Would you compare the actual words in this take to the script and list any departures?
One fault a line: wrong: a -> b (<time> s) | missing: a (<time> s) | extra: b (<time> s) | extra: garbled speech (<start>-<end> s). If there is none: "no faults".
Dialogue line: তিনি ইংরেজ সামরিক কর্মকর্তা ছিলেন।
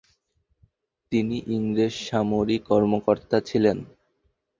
no faults